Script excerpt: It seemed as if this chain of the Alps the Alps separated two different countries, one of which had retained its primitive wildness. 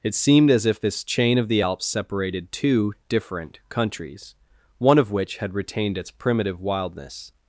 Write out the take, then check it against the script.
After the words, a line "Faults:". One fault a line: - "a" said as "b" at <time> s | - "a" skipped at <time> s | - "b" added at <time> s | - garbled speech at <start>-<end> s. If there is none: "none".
It seemed as if this chain of the Alps separated two different countries, one of which had retained its primitive wildness.
Faults:
- "the Alps" skipped at 1.9 s